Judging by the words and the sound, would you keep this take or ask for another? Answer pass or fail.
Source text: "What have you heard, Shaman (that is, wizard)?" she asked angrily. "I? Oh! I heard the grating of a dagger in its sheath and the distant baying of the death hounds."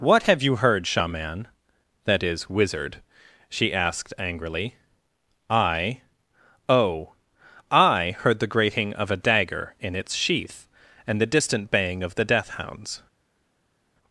pass